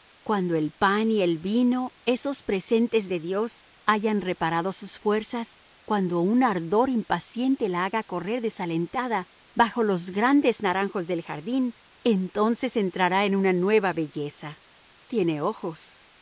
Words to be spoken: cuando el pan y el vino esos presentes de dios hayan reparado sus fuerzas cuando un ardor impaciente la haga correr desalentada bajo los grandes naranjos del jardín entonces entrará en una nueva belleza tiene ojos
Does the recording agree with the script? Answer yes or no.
yes